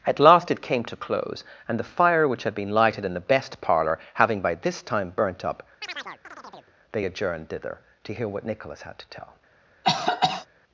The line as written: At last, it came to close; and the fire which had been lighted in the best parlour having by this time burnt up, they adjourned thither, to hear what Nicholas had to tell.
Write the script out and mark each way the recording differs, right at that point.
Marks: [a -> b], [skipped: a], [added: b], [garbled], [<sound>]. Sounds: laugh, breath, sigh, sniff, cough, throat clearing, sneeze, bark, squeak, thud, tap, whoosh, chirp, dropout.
At last, it came to close; and the fire which had been lighted in the best parlour having by this time burnt up, [chirp] they adjourned thither, to hear what Nicholas had to tell. [cough]